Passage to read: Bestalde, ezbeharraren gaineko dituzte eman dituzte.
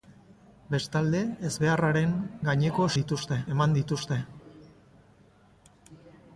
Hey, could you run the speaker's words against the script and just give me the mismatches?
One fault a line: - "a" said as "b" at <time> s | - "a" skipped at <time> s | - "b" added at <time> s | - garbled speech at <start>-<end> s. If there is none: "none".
none